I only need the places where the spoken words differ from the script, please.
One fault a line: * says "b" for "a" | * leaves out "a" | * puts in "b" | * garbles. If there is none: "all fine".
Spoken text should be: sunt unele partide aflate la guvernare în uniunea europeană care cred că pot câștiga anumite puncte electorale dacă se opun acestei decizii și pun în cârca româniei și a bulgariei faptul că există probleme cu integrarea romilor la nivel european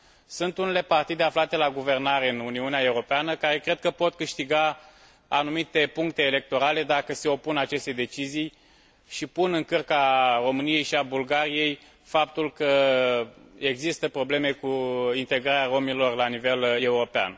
all fine